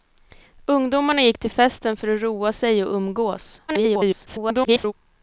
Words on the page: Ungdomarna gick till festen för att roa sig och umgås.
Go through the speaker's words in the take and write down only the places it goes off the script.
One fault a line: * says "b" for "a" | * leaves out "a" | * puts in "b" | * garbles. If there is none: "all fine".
* garbles